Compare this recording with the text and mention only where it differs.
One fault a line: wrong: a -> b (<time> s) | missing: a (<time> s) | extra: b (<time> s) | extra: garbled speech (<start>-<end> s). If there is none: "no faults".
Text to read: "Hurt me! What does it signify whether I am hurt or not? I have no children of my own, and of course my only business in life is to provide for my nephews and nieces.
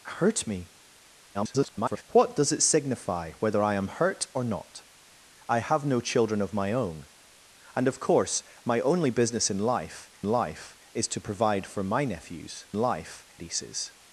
extra: garbled speech (1.3-2.0 s)
extra: life (10.2 s)
wrong: and -> life (12.7 s)